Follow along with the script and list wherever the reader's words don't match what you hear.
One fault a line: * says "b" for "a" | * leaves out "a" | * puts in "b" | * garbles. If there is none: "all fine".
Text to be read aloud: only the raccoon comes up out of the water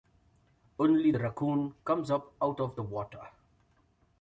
all fine